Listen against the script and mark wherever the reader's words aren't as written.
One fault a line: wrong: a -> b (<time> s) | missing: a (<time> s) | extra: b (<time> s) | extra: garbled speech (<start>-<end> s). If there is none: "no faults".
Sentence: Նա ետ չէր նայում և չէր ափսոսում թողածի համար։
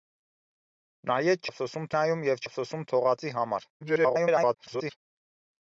wrong: չէր -> ափսոսում (1.5 s)
missing: չէր (2.4 s)
extra: garbled speech (3.8-5.0 s)